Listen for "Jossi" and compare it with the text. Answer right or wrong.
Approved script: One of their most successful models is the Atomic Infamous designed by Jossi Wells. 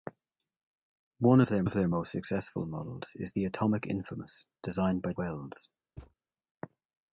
wrong